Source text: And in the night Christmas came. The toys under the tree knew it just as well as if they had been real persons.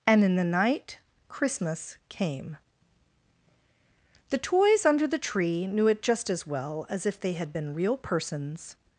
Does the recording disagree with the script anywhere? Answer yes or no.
no